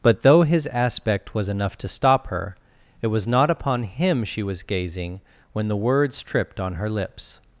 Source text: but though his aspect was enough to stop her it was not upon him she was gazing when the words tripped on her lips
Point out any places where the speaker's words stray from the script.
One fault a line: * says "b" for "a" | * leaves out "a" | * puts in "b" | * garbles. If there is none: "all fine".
all fine